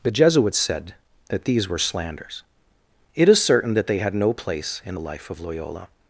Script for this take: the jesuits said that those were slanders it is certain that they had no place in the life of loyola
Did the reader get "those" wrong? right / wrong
wrong